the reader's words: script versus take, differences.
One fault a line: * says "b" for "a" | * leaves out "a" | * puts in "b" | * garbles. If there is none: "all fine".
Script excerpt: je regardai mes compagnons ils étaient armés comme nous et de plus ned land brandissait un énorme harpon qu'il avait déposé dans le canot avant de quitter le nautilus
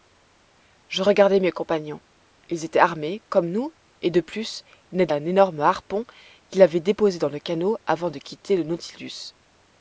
* leaves out "land brandissait"